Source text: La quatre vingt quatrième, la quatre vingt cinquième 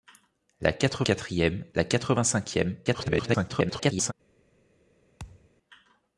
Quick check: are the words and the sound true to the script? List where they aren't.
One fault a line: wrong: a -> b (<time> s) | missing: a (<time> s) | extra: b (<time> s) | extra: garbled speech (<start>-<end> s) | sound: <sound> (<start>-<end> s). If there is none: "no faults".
missing: vingt (1.0 s)
extra: garbled speech (2.9-4.1 s)
sound: thud (5.2-5.5 s)